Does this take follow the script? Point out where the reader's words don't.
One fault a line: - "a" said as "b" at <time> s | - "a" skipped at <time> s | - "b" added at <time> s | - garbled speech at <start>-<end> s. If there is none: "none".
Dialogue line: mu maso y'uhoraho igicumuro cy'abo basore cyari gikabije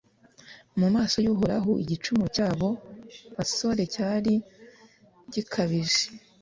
none